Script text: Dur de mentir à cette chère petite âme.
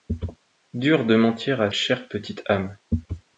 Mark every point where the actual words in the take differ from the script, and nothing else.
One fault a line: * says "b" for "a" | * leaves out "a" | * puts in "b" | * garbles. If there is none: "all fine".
* leaves out "cette"